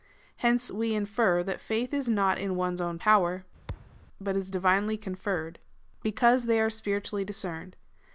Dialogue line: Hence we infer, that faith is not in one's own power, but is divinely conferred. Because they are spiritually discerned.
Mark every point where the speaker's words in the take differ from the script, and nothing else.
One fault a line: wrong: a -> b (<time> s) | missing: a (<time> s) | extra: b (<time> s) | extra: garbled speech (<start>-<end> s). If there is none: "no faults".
no faults